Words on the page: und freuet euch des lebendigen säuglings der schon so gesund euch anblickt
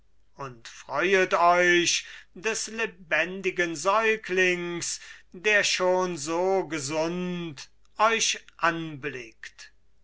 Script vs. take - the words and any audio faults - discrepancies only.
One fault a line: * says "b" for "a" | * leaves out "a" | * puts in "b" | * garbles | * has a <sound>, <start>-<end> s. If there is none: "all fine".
all fine